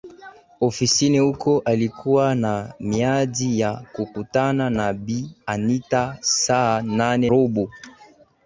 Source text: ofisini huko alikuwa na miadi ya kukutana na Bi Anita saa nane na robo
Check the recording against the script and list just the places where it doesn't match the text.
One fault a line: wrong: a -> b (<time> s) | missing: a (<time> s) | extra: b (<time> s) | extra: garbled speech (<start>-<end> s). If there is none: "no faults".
missing: na (7.3 s)